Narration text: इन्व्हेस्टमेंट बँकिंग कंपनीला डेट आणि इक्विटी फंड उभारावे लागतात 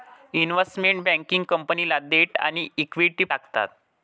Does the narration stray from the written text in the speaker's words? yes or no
yes